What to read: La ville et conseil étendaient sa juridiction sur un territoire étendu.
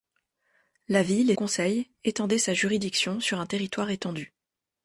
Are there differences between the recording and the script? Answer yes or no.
no